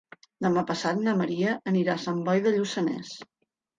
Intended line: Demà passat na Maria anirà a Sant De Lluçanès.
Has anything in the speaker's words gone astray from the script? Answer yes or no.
yes